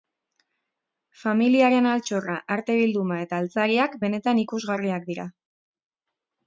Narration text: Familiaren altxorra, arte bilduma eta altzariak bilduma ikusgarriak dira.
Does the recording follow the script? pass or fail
fail